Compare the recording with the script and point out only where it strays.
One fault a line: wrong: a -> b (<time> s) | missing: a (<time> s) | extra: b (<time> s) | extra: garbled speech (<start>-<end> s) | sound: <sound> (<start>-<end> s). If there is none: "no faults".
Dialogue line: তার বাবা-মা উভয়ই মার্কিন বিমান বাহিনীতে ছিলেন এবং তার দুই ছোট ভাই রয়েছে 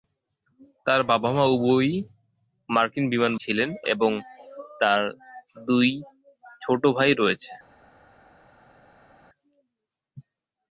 missing: বাহিনীতে (3.3 s)